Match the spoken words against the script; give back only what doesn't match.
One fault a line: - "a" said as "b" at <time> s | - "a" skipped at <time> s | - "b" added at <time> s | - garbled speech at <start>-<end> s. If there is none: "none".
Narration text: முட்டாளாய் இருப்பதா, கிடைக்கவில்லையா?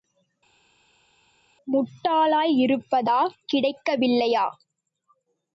none